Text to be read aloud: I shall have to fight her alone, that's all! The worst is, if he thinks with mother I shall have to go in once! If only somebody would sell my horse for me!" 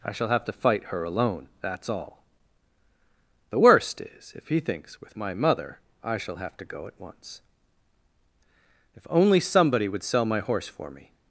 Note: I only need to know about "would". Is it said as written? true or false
true